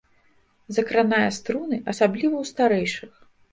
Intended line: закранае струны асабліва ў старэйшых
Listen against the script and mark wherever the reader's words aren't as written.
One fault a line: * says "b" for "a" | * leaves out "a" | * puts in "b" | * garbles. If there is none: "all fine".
all fine